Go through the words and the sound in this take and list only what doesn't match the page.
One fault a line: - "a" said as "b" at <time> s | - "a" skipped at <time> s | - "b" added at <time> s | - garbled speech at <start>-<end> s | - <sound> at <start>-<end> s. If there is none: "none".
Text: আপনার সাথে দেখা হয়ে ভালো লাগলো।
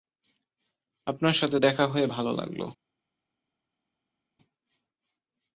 none